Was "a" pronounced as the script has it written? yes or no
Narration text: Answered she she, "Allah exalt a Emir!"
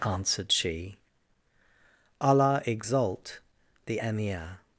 no